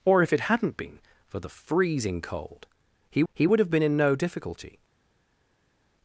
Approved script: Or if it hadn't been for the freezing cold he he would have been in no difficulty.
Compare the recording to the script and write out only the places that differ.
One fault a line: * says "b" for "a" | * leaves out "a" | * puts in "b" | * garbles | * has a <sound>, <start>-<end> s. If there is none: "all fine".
all fine